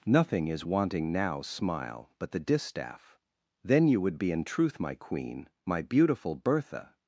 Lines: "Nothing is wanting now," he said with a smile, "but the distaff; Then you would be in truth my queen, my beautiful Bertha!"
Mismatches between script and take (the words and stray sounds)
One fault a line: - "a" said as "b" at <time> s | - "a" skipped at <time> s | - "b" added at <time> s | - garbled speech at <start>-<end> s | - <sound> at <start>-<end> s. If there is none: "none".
- "he said with a" skipped at 1.4 s